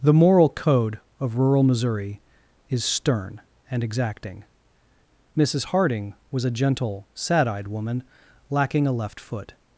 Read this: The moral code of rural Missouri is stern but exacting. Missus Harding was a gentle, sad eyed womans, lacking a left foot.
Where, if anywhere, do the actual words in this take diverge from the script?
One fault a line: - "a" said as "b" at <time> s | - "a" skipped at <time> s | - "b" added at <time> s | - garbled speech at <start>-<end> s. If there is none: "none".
- "but" said as "and" at 3.7 s
- "womans" said as "woman" at 7.7 s